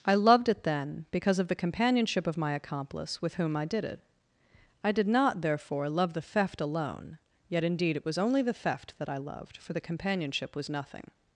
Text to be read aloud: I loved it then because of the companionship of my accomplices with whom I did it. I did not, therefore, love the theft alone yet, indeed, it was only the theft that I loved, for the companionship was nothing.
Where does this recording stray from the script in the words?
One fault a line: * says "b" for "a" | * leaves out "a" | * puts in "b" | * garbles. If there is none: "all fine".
* says "accomplice" for "accomplices"